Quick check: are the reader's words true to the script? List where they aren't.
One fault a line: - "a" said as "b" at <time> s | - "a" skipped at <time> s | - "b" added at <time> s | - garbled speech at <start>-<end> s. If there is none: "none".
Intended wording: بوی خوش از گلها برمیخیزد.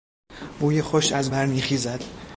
- "گلها" skipped at 1.3 s